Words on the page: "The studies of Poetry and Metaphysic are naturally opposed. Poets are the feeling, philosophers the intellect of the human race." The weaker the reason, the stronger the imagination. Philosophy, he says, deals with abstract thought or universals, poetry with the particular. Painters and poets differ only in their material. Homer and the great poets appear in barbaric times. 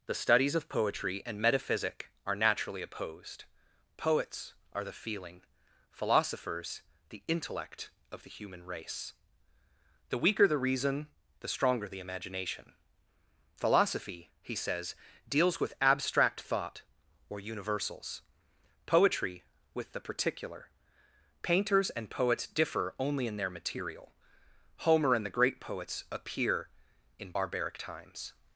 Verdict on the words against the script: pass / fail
pass